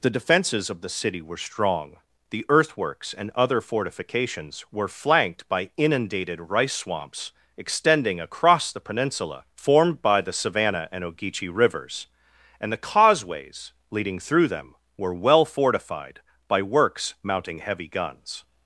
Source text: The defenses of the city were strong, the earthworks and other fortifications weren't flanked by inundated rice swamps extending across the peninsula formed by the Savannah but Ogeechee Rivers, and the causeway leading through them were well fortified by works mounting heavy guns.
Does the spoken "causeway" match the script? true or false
false